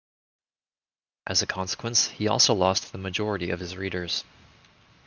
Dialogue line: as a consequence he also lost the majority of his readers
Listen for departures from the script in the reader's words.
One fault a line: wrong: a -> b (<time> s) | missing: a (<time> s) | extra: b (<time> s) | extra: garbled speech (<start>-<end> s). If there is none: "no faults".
no faults